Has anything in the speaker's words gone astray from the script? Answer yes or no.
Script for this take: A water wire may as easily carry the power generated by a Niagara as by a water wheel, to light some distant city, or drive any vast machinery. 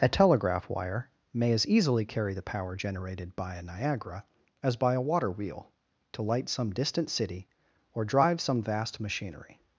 yes